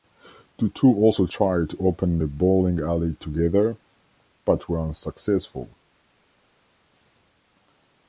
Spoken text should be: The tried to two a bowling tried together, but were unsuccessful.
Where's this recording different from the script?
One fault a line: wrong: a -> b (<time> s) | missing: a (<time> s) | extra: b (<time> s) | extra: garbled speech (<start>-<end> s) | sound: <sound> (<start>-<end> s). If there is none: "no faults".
extra: two also (0.7 s)
wrong: two -> open (1.9 s)
wrong: tried -> alley (2.8 s)